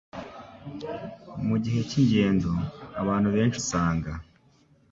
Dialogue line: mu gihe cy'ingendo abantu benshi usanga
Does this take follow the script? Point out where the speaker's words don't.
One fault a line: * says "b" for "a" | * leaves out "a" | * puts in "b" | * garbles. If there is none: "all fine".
all fine